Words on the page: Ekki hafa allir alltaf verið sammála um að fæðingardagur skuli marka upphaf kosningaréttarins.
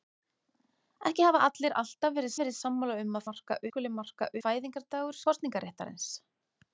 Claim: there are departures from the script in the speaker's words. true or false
true